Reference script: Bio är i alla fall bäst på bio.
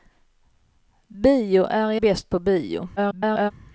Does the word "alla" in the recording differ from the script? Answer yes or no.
yes